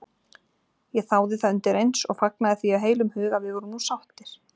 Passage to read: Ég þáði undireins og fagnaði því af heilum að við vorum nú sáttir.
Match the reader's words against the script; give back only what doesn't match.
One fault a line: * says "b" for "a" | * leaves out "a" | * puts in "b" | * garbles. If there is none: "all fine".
* puts in "það"
* puts in "hug"